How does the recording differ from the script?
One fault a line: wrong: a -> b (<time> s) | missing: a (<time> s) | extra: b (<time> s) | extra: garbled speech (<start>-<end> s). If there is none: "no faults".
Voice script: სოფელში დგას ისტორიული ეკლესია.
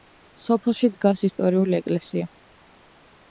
no faults